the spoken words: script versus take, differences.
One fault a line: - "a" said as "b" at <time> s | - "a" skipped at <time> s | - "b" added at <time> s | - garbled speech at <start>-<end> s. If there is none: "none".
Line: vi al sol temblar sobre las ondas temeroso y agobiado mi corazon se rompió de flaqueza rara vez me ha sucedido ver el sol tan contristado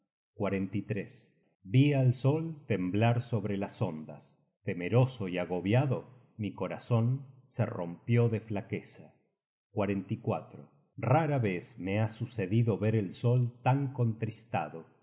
none